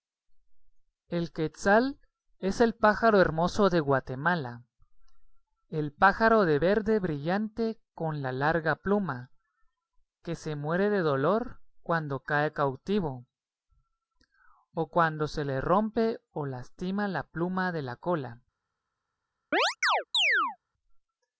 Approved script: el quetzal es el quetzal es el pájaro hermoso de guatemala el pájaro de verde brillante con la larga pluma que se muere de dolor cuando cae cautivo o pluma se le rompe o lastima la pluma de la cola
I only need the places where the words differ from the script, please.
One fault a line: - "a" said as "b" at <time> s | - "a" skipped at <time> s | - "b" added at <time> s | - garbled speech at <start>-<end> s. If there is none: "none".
- "quetzal es el" skipped at 2.7 s
- "pluma" said as "cuando" at 14.9 s